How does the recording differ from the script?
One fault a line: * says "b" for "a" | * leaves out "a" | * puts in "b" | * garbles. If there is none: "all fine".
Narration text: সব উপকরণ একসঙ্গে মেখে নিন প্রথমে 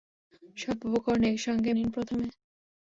* leaves out "মেখে"